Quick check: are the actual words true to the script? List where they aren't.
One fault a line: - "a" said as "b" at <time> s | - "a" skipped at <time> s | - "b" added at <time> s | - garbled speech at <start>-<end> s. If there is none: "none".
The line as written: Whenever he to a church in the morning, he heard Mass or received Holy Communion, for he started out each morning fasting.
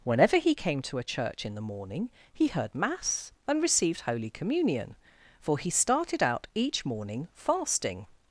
- "came" added at 0.6 s
- "or" said as "and" at 3.5 s